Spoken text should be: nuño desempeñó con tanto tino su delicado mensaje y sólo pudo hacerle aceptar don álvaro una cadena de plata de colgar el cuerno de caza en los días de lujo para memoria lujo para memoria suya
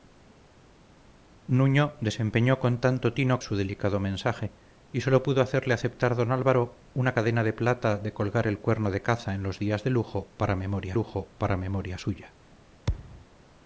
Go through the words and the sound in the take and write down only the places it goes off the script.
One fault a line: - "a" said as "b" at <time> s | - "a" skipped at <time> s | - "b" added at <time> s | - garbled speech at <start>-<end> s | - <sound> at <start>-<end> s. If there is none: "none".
- thud at 12.9-13.3 s